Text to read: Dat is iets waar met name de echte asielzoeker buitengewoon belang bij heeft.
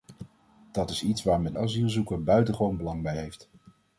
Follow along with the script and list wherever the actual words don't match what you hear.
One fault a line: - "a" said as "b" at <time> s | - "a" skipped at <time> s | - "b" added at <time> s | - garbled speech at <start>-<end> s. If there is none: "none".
- "name de echte" skipped at 1.6 s